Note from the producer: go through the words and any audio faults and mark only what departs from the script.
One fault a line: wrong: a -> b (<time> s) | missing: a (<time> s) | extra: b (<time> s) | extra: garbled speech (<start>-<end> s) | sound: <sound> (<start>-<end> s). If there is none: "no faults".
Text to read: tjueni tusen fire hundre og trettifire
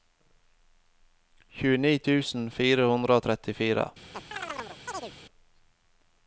sound: chirp (4.1-5.1 s)